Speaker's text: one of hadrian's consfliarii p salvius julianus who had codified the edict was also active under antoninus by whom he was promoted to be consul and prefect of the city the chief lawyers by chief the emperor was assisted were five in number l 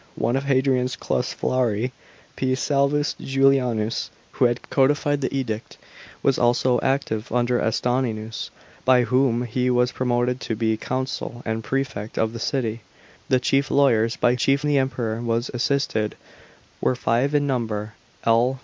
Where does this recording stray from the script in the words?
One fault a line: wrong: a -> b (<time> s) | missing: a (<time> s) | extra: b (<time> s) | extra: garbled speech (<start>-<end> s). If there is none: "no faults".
no faults